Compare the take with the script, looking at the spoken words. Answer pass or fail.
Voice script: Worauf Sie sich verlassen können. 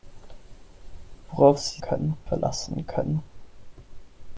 fail